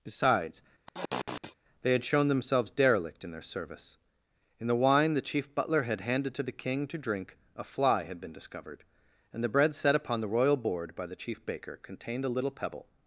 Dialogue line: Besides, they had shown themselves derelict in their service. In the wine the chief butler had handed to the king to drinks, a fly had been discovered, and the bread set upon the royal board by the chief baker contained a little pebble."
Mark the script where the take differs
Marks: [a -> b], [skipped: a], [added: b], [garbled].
Besides, they had shown themselves derelict in their service. In the wine the chief butler had handed to the king to [drinks, -> drink] a fly had been discovered, and the bread set upon the royal board by the chief baker contained a little pebble."